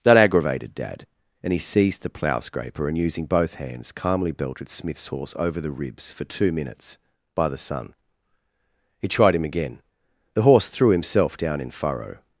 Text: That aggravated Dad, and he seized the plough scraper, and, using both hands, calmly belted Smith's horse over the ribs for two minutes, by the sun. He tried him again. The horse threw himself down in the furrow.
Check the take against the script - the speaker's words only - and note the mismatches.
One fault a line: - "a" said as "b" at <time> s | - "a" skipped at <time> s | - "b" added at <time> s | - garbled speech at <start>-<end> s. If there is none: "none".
- "the" skipped at 11.7 s